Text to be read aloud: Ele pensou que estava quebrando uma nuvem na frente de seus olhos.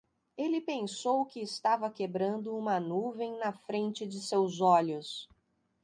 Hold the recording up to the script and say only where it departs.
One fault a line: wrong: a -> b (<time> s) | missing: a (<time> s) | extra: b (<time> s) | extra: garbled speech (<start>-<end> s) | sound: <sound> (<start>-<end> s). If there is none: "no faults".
no faults